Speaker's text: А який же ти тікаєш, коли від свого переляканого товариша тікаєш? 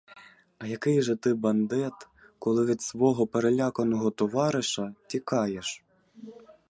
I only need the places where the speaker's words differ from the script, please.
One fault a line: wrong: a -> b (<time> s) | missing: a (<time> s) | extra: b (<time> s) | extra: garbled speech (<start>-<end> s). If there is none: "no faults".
wrong: тікаєш -> бандит (1.3 s)